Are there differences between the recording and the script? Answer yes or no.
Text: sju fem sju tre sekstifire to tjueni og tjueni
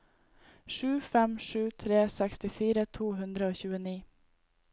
yes